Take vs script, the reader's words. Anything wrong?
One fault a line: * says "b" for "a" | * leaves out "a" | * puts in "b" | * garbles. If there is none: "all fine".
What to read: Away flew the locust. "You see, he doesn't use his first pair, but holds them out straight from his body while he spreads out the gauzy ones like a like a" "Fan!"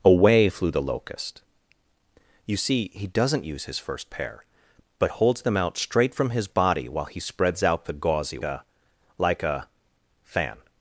* leaves out "ones like"